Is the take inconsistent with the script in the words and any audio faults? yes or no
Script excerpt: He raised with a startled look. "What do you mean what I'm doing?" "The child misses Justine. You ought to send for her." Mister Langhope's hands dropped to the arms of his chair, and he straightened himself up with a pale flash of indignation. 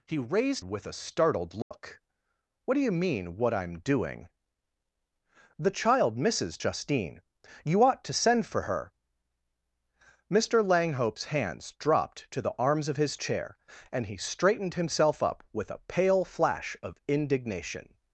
yes